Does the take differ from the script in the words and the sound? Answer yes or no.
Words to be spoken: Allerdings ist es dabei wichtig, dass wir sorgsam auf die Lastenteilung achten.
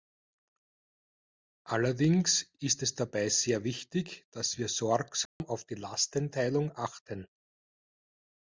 yes